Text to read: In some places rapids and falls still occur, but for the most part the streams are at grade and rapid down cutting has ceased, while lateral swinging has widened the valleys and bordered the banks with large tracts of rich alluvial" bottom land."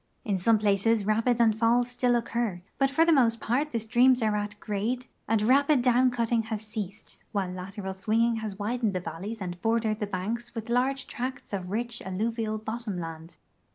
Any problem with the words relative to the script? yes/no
no